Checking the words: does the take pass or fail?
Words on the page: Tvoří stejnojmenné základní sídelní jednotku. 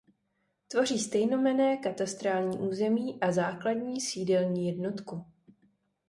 fail